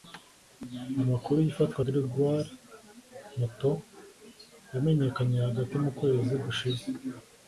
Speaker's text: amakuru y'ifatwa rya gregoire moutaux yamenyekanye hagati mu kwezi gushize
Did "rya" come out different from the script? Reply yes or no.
yes